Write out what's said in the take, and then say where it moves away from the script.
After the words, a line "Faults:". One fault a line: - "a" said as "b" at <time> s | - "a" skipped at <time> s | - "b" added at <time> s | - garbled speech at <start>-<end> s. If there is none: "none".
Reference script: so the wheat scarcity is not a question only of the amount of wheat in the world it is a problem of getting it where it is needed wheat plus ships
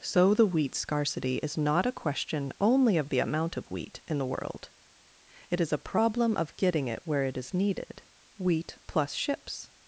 so the wheat scarcity is not a question only of the amount of wheat in the world it is a problem of getting it where it is needed wheat plus ships
Faults:
none